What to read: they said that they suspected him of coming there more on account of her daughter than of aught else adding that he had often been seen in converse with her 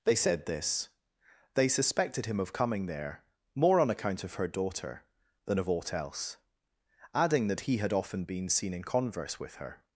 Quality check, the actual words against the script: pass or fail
fail